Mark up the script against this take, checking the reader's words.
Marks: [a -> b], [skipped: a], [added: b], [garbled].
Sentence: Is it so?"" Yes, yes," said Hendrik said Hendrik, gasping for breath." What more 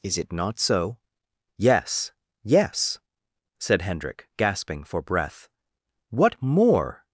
Is it [added: not] so?"" Yes, yes," said Hendrik [skipped: said Hendrik,] gasping for breath." What more